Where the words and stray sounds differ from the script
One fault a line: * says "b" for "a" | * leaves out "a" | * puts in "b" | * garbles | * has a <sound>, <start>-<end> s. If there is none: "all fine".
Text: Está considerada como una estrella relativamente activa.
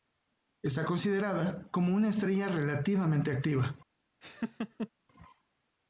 * has a laugh, 4.2-4.9 s